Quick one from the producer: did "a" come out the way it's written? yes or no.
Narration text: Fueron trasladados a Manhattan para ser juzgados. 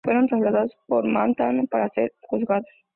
yes